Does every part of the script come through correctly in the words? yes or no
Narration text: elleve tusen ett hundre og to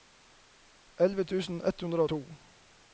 yes